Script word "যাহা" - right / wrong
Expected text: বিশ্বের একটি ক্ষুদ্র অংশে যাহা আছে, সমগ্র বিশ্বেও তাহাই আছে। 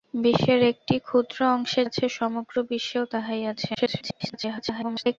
wrong